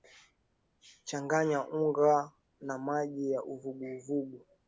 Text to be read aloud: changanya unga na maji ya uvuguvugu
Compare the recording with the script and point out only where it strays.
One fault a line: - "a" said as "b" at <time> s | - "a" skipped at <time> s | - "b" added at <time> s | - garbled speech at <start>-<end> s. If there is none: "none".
none